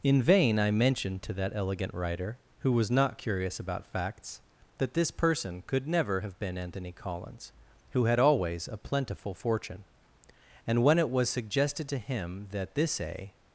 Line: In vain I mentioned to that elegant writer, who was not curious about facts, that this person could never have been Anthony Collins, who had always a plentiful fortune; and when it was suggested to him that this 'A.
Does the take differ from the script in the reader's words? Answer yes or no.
no